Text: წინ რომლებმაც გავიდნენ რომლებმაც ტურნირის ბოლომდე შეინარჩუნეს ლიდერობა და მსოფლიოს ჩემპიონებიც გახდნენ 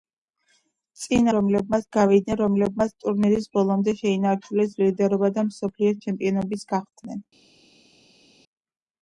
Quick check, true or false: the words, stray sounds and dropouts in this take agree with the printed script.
true